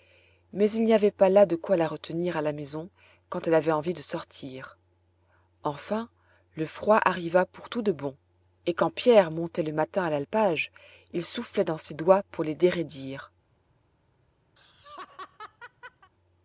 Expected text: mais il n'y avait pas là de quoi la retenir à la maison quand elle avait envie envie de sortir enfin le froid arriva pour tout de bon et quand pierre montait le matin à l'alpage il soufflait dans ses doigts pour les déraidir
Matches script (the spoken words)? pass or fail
fail